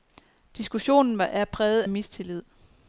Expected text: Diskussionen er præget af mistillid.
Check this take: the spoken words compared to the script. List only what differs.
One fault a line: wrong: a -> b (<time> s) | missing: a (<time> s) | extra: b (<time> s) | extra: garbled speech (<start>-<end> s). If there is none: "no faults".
missing: af (1.8 s)